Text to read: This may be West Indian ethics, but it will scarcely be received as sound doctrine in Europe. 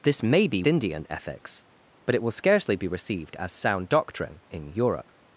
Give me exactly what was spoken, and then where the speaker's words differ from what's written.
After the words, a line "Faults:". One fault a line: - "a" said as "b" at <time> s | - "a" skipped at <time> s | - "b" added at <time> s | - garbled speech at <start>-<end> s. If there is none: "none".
This may be Indian ethics, but it will scarcely be received as sound doctrine in Europe.
Faults:
- "West" skipped at 0.6 s